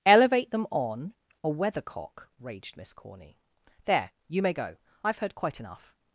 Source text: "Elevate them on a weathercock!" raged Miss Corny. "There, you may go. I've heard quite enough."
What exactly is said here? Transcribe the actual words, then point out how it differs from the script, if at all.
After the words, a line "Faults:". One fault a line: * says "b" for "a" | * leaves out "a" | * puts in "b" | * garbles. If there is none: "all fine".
"Elevate them on a weathercock!" raged Miss Corny. "There, you may go. I've heard quite enough."
Faults:
all fine